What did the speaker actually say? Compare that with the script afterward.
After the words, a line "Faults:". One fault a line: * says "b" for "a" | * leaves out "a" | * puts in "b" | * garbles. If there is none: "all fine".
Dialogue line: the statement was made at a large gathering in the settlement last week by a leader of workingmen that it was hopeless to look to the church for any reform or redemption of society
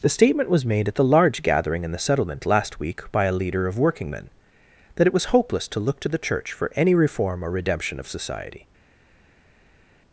the statement was made at the large gathering in the settlement last week by a leader of workingmen that it was hopeless to look to the church for any reform or redemption of society
Faults:
* says "the" for "a"